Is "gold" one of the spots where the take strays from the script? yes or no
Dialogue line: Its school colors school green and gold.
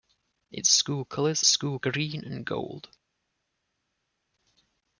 no